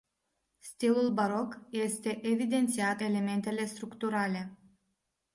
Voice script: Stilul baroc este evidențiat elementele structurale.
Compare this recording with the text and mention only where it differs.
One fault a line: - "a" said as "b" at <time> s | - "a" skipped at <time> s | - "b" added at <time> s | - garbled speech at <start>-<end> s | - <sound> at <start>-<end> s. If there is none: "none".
none